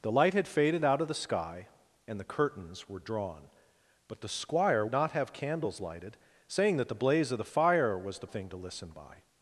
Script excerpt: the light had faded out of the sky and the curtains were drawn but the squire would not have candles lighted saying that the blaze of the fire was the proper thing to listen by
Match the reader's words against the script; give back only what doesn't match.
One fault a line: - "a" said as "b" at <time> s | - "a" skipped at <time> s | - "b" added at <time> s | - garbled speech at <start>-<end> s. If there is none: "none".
- "would" skipped at 4.8 s
- "proper" skipped at 8.3 s